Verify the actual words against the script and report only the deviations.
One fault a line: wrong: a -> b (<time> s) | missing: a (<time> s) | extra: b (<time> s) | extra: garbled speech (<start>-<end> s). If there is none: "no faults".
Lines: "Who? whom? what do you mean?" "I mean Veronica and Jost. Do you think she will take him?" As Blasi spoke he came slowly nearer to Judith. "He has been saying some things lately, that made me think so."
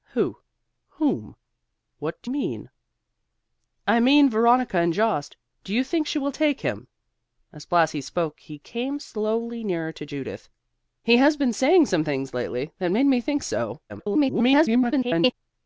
missing: you (2.3 s)
extra: garbled speech (13.9-15.3 s)